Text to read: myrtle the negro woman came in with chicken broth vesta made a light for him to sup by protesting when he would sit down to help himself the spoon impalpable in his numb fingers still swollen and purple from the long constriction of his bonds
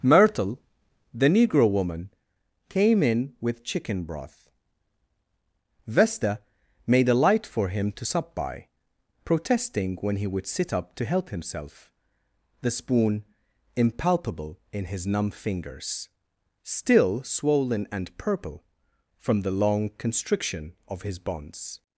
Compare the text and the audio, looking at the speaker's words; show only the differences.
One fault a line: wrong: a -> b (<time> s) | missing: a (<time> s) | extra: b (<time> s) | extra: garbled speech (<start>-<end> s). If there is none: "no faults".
wrong: down -> up (10.7 s)